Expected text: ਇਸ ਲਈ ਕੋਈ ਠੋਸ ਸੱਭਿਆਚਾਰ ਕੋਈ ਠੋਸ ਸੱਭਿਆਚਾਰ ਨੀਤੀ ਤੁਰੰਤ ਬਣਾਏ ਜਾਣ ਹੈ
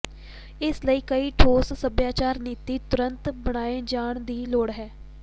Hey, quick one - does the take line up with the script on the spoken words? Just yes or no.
no